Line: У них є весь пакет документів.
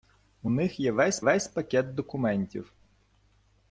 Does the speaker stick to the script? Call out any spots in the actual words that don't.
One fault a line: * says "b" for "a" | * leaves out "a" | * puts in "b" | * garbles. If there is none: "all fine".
* puts in "весь"